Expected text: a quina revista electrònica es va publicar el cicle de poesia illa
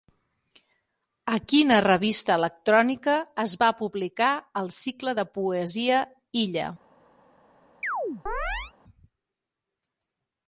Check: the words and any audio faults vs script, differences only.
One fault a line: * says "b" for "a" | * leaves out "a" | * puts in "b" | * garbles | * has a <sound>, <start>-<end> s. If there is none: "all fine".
* has a chirp, 7.8-8.7 s